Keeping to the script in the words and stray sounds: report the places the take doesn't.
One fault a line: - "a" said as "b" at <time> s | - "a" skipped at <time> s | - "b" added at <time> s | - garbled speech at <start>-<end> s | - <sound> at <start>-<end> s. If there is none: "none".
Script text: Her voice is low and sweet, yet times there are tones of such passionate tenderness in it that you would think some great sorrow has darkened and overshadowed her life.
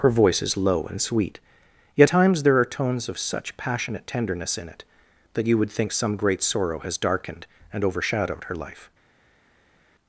none